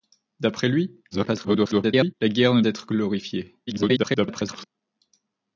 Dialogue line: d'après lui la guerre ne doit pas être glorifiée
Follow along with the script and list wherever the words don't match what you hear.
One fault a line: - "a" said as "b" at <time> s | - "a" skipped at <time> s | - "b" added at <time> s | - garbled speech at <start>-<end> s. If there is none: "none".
- garbled speech at 1.1-2.1 s
- "doit pas" skipped at 2.6 s
- garbled speech at 3.7-4.7 s